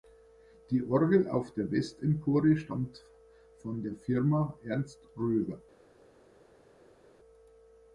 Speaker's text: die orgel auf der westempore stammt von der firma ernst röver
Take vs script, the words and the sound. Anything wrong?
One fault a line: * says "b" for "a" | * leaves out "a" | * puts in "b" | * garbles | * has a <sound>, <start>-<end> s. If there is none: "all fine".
all fine